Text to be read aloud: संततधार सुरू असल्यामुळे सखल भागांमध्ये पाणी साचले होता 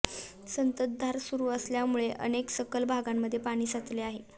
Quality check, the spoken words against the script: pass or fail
fail